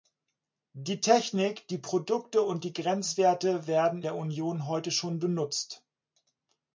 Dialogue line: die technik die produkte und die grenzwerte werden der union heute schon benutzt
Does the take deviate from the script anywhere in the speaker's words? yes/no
no